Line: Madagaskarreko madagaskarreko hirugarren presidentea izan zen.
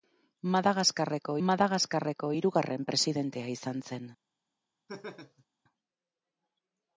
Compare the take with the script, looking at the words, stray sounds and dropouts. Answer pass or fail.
fail